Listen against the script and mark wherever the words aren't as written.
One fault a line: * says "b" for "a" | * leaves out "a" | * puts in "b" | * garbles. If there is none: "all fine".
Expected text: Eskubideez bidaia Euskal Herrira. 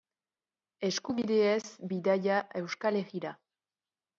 all fine